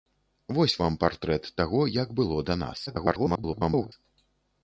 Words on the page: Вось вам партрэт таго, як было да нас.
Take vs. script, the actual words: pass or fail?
fail